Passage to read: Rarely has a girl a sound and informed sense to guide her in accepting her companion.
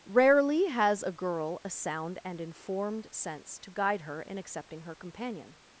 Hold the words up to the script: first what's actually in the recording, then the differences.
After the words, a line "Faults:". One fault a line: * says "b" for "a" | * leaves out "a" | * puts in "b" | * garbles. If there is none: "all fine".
Rarely has a girl a sound and informed sense to guide her in accepting her companion.
Faults:
all fine